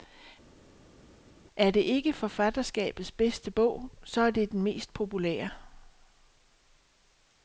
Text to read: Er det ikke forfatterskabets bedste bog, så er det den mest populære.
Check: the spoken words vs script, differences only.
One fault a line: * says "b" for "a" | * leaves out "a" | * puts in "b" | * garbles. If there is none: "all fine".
all fine